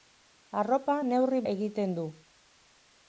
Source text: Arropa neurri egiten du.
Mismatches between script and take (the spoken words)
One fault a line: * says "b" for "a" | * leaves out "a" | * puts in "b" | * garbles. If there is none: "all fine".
all fine